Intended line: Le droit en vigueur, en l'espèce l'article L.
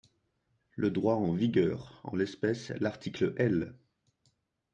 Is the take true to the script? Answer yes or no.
yes